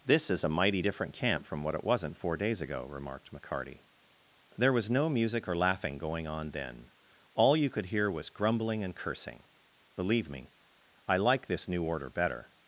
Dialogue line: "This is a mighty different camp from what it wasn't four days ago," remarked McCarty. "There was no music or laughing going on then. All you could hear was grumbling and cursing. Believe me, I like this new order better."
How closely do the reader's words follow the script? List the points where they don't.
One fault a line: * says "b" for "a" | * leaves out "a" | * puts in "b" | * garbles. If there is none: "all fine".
all fine